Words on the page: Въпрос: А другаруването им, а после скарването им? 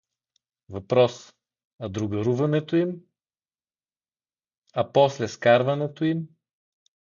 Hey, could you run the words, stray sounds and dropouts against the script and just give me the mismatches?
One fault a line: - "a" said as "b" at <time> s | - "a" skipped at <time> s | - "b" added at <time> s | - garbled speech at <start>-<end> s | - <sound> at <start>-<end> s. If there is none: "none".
none